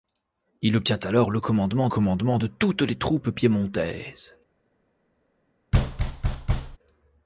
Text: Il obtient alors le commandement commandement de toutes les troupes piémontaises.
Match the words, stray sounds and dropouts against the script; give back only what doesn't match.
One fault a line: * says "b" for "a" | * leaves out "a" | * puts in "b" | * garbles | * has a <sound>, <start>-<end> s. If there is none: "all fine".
* has a thud, 5.7-6.8 s